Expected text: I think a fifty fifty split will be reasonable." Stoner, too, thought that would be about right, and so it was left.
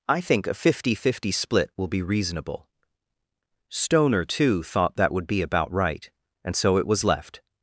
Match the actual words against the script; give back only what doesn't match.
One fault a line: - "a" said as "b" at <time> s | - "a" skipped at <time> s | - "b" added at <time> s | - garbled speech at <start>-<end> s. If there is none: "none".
none